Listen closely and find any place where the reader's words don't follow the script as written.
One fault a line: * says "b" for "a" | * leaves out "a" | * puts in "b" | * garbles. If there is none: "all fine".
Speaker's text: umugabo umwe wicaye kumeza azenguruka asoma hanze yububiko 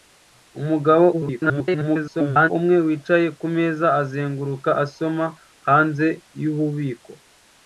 * garbles